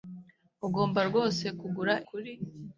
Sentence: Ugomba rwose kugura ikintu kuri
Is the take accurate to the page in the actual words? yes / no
no